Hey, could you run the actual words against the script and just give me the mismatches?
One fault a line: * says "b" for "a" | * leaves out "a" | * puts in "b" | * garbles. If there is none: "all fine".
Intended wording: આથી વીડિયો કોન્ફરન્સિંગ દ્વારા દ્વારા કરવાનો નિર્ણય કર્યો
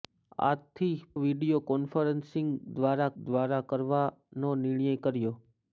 all fine